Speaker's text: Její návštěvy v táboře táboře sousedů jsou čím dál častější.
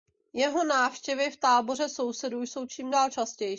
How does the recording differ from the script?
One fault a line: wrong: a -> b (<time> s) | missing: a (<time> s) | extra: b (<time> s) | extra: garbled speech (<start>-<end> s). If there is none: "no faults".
wrong: Její -> Jeho (0.3 s)
missing: táboře (1.9 s)